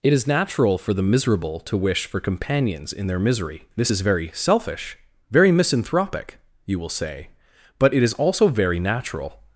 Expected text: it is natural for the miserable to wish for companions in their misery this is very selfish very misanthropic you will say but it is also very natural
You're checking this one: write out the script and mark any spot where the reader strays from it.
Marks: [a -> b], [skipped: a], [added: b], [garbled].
it is natural for the miserable to wish for companions in their misery this is very selfish very misanthropic you will say but it is also very natural